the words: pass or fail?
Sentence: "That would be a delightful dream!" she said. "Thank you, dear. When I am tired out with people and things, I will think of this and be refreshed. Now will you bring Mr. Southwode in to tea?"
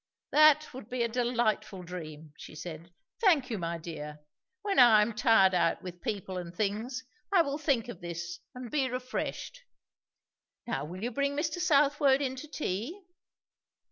fail